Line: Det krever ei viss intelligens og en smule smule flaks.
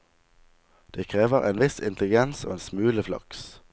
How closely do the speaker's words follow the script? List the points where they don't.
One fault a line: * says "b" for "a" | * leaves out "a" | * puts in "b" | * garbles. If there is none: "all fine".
* says "en" for "ei"
* leaves out "smule"